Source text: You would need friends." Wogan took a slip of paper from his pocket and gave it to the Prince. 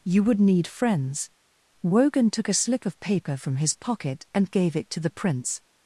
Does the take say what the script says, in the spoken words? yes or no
yes